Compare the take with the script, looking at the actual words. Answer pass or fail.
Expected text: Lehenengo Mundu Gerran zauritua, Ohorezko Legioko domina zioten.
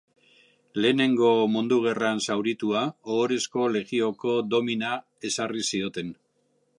fail